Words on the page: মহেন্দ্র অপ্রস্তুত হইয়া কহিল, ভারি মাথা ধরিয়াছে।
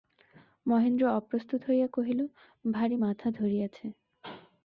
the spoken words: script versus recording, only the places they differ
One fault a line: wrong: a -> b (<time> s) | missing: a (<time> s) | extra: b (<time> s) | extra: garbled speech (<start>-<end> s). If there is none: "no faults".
no faults